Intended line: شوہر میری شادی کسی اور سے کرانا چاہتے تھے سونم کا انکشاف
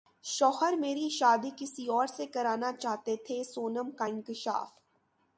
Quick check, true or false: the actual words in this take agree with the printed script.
true